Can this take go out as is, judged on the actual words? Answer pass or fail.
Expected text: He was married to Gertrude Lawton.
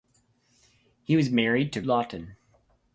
fail